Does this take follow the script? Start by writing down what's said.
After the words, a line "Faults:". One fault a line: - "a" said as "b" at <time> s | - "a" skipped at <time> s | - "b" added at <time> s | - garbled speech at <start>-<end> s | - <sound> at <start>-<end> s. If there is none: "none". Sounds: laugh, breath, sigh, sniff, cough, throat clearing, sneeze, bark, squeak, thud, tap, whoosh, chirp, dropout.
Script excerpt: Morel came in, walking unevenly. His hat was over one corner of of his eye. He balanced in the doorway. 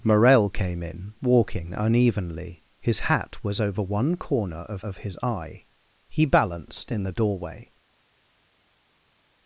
Morel came in, walking unevenly. His hat was over one corner of of his eye. He balanced in the doorway.
Faults:
none